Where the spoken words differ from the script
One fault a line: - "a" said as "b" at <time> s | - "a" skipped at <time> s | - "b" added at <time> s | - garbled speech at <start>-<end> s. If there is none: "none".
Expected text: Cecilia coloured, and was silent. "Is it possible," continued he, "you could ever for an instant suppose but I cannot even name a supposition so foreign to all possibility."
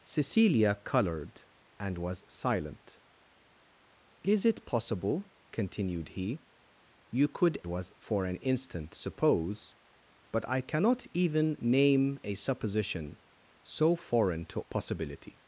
- "ever" said as "was" at 7.7 s
- "all" skipped at 14.6 s